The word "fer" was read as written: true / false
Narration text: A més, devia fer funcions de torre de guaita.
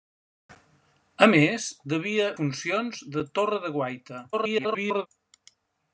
false